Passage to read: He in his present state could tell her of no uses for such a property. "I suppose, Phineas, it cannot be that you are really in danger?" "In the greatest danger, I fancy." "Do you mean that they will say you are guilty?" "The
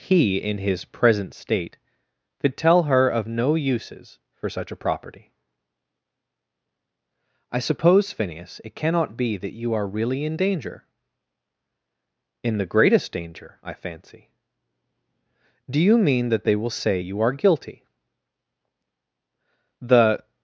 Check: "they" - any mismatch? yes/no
no